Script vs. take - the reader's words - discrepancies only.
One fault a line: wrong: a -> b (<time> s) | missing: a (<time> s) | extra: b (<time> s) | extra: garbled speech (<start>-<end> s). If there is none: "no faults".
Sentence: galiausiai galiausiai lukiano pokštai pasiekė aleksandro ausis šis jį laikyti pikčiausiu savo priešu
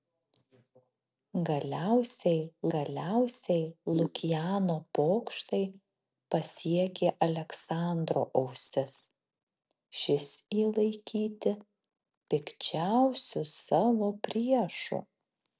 no faults